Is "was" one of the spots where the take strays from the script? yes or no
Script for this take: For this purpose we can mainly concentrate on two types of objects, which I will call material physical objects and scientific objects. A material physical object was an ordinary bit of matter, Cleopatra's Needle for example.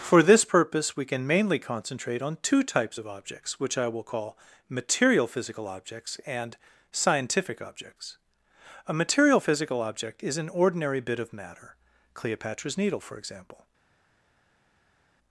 yes